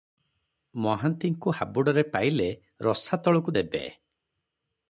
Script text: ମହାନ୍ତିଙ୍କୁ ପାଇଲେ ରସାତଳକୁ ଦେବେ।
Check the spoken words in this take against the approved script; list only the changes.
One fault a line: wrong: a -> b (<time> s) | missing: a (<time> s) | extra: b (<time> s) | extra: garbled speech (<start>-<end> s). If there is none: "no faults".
extra: ହାବୁଡ଼ରେ (1.5 s)